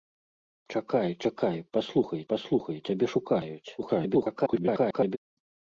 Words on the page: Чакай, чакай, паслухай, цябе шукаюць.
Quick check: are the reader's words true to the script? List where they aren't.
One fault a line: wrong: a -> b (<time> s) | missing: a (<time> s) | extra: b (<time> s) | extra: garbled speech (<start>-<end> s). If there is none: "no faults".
extra: паслухай (2.3 s)
extra: garbled speech (3.8-5.2 s)